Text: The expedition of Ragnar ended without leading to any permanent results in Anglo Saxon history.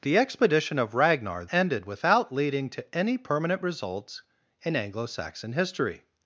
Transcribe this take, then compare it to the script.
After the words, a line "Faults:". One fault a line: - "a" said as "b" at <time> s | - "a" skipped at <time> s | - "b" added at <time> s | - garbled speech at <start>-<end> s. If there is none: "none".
The expedition of Ragnar ended without leading to any permanent results in Anglo Saxon history.
Faults:
none